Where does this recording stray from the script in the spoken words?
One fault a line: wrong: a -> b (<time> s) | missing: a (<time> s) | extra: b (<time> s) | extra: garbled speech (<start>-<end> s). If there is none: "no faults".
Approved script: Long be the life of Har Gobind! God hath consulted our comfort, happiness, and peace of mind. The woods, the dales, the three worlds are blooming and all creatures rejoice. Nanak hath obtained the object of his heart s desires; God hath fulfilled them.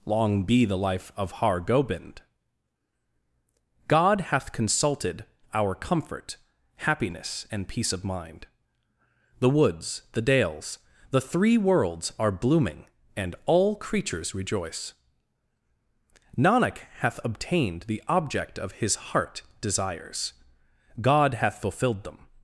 missing: s (19.4 s)